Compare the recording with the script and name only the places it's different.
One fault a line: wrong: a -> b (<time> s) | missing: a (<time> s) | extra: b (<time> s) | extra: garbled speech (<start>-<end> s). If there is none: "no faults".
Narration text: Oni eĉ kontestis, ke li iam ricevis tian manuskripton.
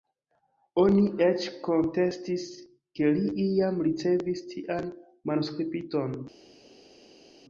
no faults